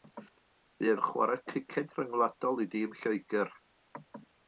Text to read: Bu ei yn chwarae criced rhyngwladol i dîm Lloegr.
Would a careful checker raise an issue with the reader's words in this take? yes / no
no